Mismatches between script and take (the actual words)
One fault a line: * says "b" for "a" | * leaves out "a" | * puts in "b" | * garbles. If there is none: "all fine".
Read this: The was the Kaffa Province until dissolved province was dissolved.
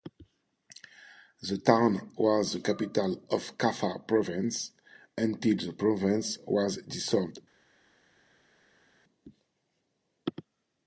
* puts in "town"
* puts in "capital of"
* says "the" for "dissolved"